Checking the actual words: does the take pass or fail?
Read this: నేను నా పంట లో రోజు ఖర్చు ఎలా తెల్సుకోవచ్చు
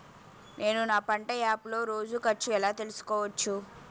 fail